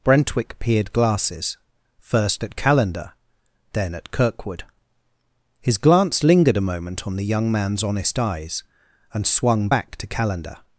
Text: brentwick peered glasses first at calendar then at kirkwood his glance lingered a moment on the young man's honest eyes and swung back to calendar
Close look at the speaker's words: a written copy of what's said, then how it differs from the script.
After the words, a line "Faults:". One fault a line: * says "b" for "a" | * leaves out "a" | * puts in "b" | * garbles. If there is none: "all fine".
brentwick peered glasses first at calendar then at kirkwood his glance lingered a moment on the young man's honest eyes and swung back to calendar
Faults:
all fine